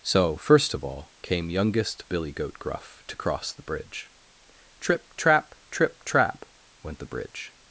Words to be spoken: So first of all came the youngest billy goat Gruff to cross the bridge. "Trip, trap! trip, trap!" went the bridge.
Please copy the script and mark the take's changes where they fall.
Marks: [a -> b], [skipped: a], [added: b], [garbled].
So first of all came [skipped: the] youngest billy goat Gruff to cross the bridge. "Trip, trap! trip, trap!" went the bridge.